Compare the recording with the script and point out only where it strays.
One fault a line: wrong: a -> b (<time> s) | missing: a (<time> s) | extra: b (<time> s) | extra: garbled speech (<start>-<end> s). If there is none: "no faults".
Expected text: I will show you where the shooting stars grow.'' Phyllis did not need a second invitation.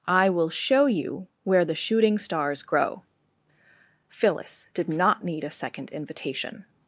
no faults